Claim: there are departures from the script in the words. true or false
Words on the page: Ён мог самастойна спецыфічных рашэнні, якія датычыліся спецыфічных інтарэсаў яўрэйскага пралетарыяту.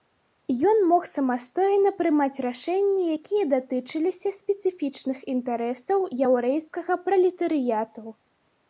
true